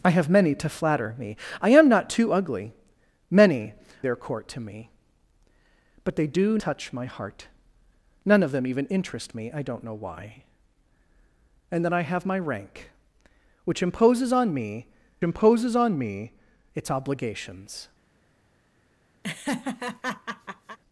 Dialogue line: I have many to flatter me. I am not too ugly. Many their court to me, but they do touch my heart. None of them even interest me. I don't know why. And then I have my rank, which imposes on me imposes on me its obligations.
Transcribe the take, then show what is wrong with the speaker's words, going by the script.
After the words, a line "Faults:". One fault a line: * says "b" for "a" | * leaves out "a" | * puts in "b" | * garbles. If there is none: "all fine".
I have many to flatter me. I am not too ugly. Many their court to me, but they do touch my heart. None of them even interest me. I don't know why. And then I have my rank, which imposes on me imposes on me its obligations.
Faults:
all fine